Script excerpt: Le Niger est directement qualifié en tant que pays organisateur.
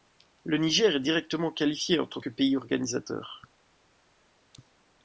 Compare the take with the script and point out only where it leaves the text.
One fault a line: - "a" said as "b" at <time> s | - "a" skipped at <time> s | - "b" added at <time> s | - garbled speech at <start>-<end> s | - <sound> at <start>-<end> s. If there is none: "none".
none